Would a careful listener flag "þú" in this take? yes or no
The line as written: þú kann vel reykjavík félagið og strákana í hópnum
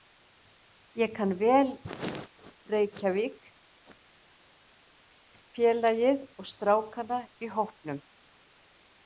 yes